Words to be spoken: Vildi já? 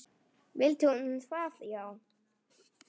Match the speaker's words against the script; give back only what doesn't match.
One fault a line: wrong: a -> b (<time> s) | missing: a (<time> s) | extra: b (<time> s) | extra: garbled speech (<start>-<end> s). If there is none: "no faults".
extra: hún það (0.9 s)